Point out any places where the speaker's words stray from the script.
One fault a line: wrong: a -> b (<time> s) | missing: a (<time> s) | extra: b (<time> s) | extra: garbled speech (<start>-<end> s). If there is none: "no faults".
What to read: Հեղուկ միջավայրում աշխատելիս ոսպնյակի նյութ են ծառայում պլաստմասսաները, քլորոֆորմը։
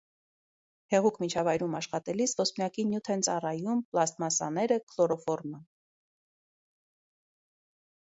no faults